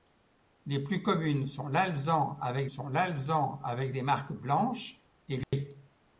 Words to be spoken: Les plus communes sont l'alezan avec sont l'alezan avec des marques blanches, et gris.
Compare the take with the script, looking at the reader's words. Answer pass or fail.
pass